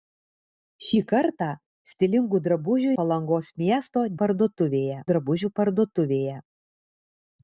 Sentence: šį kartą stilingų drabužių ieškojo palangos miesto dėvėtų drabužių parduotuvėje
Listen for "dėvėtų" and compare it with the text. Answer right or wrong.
wrong